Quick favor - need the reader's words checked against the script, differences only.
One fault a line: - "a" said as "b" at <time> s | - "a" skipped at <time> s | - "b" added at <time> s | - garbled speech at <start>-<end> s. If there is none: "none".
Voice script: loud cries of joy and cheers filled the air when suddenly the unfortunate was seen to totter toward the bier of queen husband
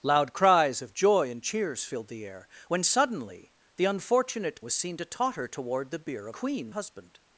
none